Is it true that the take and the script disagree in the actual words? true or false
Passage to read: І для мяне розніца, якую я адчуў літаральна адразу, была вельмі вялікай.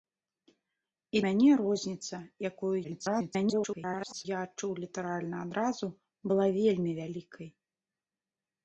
true